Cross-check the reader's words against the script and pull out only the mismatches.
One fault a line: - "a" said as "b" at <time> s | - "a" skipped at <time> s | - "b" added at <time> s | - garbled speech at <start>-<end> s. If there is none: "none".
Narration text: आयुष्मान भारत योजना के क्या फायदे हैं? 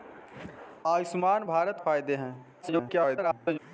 - "योजना के क्या" skipped at 1.8 s
- garbled speech at 2.6-3.6 s